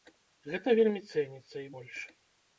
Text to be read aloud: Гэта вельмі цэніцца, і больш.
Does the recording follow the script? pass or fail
pass